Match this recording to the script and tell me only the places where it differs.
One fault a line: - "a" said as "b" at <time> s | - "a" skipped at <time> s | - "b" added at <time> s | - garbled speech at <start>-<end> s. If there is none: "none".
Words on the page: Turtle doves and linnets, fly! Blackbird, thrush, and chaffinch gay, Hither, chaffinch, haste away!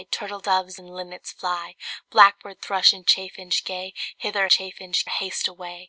none